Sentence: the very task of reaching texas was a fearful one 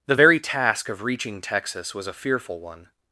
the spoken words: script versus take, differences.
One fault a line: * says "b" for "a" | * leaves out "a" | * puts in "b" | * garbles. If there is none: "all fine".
all fine